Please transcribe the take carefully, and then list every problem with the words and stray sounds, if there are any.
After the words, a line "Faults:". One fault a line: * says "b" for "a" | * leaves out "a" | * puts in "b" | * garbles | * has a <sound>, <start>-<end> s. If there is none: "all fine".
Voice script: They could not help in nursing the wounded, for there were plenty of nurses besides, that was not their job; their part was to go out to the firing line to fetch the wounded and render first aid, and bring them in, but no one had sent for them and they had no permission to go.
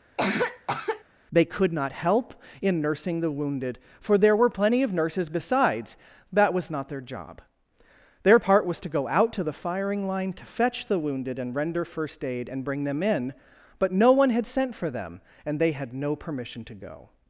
They could not help in nursing the wounded, for there were plenty of nurses besides, that was not their job; their part was to go out to the firing line to fetch the wounded and render first aid, and bring them in, but no one had sent for them and they had no permission to go.
Faults:
* has a cough, 0.2-1.0 s